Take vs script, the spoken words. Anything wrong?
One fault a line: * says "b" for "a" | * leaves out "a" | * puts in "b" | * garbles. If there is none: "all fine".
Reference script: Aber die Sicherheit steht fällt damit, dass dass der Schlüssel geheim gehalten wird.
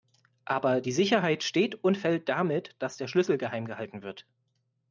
* puts in "und"
* leaves out "dass"